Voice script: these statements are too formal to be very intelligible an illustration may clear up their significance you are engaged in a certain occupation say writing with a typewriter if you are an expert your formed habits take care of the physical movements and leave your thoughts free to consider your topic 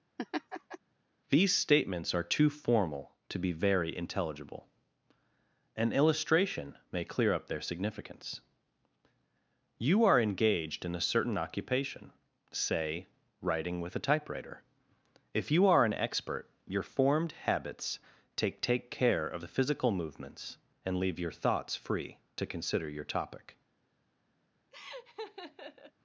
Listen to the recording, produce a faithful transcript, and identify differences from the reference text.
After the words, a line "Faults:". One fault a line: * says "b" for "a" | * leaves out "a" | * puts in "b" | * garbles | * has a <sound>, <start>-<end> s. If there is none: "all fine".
these statements are too formal to be very intelligible an illustration may clear up their significance you are engaged in a certain occupation say writing with a typewriter if you are an expert your formed habits take take care of the physical movements and leave your thoughts free to consider your topic
Faults:
* has a laugh, 0.2-0.8 s
* puts in "take"
* has a laugh, 24.7-25.9 s